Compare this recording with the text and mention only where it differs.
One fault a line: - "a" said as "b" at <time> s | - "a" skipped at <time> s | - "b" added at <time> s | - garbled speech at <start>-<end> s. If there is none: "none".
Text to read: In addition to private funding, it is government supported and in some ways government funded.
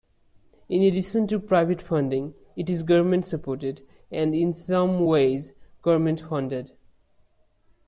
none